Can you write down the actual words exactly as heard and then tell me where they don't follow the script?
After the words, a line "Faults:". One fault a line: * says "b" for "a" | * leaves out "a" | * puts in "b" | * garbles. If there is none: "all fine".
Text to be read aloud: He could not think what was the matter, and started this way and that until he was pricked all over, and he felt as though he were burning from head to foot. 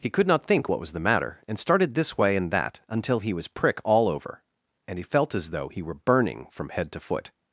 He could not think what was the matter, and started this way and that until he was prick all over, and he felt as though he were burning from head to foot.
Faults:
* says "prick" for "pricked"